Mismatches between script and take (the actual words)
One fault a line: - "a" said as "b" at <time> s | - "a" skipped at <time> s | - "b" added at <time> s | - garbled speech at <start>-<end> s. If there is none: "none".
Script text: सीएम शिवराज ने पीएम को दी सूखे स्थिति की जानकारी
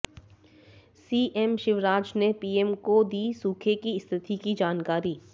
- "की" added at 3.8 s